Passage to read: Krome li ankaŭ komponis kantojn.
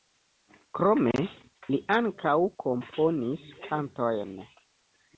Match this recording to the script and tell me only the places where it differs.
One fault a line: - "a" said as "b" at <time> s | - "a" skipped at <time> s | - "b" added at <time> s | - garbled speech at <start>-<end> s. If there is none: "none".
none